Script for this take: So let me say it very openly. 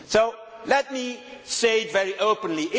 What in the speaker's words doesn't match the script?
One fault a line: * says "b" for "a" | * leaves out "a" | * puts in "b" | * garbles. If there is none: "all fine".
all fine